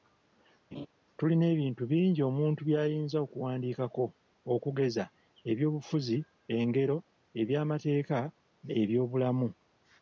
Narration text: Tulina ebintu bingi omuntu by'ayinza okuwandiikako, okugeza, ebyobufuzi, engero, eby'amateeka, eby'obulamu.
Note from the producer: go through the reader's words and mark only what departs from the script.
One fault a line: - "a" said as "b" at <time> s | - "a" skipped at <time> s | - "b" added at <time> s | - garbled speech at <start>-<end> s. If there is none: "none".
none